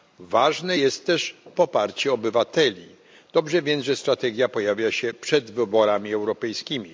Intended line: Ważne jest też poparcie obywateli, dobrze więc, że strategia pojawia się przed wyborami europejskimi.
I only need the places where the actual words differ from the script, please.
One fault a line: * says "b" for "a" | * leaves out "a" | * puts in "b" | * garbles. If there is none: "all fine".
all fine